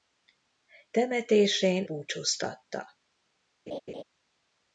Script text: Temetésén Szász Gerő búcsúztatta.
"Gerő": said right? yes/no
no